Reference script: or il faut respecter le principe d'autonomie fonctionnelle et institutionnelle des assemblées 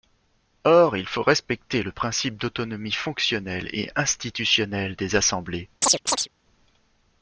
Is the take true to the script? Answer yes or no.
yes